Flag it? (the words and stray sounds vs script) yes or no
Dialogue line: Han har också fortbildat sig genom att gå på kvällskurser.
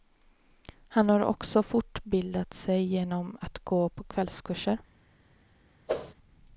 yes